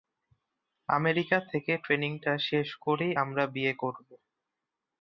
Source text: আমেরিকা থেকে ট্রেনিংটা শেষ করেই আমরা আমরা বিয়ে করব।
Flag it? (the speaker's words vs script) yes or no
yes